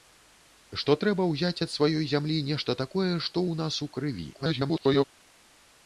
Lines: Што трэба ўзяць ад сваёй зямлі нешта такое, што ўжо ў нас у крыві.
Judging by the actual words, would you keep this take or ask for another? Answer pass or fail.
fail